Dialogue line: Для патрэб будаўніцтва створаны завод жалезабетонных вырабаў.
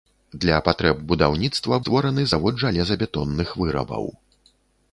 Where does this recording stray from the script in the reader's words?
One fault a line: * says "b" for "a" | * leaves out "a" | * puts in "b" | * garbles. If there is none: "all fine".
all fine